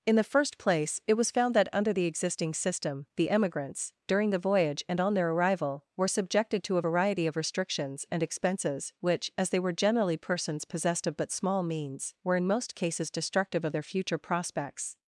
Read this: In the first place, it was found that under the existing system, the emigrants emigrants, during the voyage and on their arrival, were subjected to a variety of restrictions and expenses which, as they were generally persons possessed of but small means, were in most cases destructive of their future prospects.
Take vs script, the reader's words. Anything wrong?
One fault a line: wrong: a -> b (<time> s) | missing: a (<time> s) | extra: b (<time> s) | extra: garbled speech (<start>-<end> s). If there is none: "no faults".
missing: emigrants (3.9 s)